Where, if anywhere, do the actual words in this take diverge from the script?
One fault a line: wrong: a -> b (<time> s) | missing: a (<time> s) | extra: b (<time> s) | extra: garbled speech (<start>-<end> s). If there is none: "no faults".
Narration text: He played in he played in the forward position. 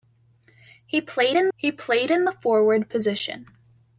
no faults